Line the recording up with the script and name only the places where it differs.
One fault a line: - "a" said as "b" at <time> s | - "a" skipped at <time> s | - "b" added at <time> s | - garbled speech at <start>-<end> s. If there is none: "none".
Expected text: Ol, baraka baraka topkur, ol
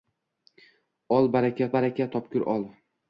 none